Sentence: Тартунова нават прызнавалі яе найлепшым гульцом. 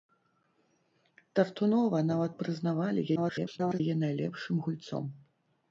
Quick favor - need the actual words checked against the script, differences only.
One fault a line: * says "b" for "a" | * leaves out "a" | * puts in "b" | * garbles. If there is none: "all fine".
* garbles